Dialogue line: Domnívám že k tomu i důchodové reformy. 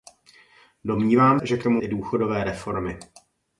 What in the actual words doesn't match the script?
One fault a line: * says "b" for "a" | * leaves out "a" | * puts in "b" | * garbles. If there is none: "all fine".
all fine